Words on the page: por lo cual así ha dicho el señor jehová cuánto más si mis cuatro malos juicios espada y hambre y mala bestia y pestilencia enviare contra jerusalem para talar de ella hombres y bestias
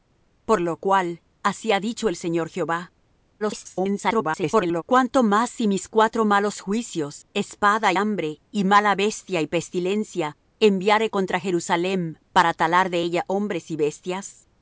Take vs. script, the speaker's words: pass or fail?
fail